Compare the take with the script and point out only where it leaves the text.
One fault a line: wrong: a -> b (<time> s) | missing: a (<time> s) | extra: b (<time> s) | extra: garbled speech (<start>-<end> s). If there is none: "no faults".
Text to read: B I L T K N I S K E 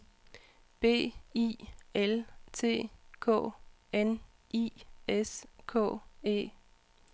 no faults